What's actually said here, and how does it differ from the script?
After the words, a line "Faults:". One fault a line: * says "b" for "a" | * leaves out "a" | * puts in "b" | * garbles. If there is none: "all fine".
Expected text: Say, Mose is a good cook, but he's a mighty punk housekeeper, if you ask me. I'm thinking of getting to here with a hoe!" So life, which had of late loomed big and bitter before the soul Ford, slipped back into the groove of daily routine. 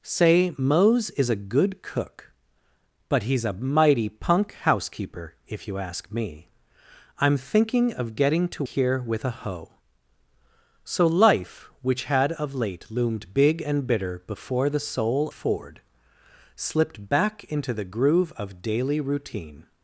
Say, Mose is a good cook, but he's a mighty punk housekeeper, if you ask me. I'm thinking of getting to here with a hoe!" So life, which had of late loomed big and bitter before the soul Ford, slipped back into the groove of daily routine.
Faults:
all fine